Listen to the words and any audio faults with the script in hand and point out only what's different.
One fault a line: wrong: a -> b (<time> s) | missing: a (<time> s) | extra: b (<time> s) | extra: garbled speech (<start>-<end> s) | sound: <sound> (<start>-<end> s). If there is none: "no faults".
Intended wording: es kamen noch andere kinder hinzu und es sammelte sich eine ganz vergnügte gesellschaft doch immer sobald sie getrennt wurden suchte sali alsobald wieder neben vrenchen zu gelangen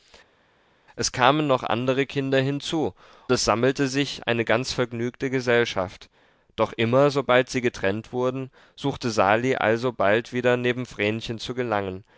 missing: und (2.9 s)